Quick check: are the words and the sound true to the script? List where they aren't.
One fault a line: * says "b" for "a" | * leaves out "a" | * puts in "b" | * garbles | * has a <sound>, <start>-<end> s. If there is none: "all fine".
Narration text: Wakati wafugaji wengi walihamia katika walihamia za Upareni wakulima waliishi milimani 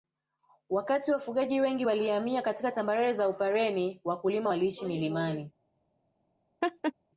* says "tambarare" for "walihamia"
* has a laugh, 6.6-6.9 s